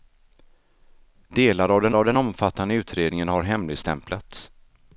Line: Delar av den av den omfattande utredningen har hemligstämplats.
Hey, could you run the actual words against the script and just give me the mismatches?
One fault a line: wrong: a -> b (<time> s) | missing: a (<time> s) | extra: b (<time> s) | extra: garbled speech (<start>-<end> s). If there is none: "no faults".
no faults